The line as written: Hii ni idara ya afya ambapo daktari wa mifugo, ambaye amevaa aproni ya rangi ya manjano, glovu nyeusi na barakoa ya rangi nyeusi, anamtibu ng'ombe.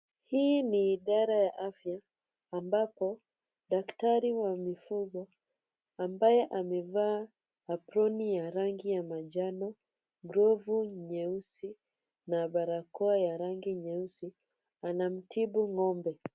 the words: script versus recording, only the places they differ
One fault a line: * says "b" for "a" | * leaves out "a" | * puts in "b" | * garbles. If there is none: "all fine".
all fine